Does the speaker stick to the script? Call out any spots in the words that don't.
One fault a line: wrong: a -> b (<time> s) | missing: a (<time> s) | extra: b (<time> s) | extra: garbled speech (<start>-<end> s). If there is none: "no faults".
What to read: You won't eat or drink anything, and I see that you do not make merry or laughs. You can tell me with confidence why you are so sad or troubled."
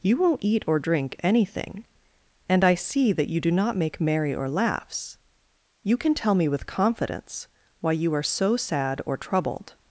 no faults